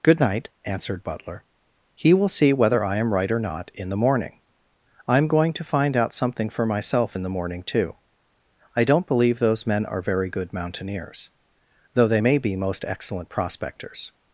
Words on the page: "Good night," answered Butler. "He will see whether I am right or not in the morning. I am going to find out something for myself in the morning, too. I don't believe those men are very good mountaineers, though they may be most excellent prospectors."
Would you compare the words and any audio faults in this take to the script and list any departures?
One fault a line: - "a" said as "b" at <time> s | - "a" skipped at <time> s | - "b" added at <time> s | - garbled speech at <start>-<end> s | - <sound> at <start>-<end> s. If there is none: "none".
none